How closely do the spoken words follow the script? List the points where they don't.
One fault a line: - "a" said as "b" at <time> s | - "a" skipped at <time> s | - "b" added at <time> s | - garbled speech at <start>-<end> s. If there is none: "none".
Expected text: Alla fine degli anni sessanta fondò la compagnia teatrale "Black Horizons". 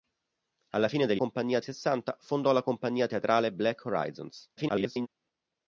- "anni" said as "compagnia" at 1.1 s
- garbled speech at 4.6-5.1 s